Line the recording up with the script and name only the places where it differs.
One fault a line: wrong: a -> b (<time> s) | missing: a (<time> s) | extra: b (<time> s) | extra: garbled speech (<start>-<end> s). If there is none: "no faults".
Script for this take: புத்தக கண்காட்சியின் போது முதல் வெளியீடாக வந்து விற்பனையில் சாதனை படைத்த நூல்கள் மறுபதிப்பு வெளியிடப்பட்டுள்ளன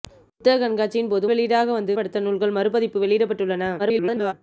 missing: முதல் (1.2 s)
missing: விற்பனையில் சாதனை (2.0 s)
extra: garbled speech (3.8-4.3 s)